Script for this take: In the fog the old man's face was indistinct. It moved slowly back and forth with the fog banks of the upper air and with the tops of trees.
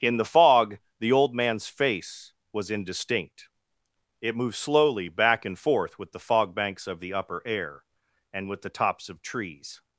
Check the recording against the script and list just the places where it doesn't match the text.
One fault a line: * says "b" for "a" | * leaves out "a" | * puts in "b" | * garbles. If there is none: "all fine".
all fine